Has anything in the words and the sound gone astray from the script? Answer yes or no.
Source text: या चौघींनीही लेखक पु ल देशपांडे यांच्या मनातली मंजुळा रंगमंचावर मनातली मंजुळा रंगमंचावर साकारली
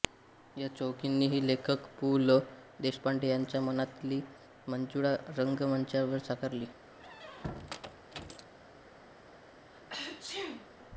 yes